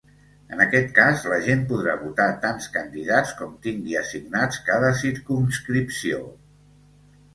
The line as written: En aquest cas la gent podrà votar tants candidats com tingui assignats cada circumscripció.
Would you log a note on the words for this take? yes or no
no